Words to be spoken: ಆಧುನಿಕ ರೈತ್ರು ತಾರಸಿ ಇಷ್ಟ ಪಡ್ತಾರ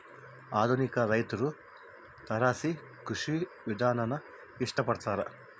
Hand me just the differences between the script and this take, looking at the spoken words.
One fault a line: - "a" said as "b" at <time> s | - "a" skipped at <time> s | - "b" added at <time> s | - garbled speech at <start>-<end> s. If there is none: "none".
- "ಕೃಷಿ ವಿಧಾನಾನ" added at 3.0 s